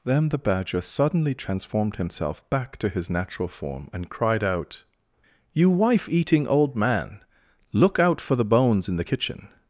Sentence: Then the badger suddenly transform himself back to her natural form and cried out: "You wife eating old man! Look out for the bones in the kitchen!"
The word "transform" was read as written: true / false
false